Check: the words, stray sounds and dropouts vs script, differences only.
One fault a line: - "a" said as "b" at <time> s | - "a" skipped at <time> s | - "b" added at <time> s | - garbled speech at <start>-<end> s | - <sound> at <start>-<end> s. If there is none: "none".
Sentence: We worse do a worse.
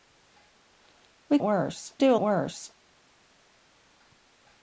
none